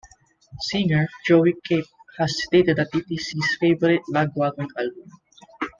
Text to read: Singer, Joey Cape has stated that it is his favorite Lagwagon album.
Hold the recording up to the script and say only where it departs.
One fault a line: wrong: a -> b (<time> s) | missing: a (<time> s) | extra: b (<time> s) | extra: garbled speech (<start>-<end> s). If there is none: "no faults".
no faults